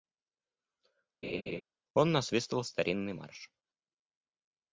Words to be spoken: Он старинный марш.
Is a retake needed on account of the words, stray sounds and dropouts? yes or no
yes